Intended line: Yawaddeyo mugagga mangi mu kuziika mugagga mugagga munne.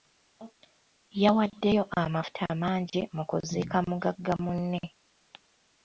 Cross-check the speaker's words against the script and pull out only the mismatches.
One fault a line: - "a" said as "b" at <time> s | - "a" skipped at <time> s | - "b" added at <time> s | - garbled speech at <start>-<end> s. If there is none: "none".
- "mugagga" said as "amafuta" at 2.0 s
- "mugagga" skipped at 4.3 s